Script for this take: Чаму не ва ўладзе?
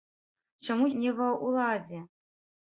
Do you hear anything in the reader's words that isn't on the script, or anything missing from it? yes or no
no